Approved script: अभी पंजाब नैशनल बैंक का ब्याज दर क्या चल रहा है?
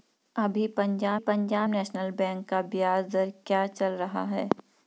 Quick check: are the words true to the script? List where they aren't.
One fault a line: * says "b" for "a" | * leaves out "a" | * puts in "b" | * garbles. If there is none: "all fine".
* puts in "पंजाब"